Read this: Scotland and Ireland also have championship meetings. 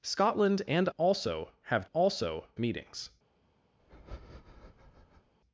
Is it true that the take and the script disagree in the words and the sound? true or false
true